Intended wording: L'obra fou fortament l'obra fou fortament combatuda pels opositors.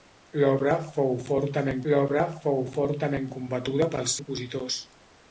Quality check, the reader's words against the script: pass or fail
pass